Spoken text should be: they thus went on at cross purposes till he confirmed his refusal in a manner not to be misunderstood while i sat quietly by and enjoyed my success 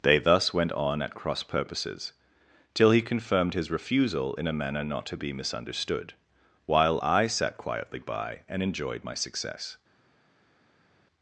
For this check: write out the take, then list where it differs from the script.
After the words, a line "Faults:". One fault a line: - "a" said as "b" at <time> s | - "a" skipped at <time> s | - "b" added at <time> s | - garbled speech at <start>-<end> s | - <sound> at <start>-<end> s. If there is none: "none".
they thus went on at cross purposes till he confirmed his refusal in a manner not to be misunderstood while i sat quietly by and enjoyed my success
Faults:
none